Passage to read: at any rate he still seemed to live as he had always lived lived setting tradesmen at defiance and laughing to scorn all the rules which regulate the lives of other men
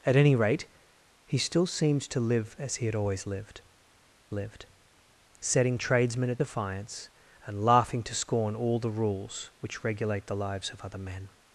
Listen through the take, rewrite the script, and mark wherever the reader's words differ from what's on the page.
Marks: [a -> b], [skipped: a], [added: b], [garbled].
at any rate he still seemed to live as he had always lived lived setting tradesmen at defiance and laughing to scorn all the rules which regulate the lives of other men